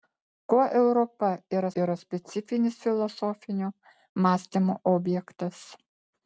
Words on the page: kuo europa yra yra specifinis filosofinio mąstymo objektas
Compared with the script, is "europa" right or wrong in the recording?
right